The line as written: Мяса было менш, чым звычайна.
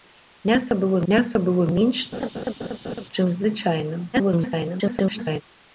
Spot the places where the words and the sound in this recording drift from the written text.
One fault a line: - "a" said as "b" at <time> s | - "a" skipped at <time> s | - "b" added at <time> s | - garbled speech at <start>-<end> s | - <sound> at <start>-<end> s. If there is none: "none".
- "мяса было" added at 1.1 s
- laugh at 2.1-3.1 s
- garbled speech at 4.1-5.4 s